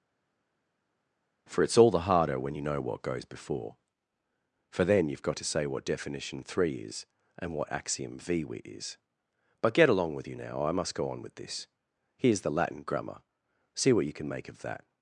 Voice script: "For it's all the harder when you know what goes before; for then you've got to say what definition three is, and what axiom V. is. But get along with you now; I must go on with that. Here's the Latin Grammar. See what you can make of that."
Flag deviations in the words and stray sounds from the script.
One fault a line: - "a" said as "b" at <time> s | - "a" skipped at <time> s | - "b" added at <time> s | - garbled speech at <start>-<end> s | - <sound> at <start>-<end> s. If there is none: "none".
- "that" said as "this" at 11.3 s